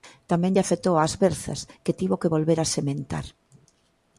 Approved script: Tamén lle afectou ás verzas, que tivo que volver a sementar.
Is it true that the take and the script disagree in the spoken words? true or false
false